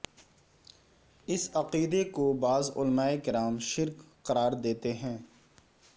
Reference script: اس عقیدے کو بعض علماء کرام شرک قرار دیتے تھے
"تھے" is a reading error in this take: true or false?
true